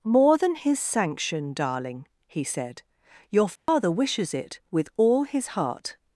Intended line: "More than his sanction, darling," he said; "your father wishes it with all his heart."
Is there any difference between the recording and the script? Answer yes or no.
no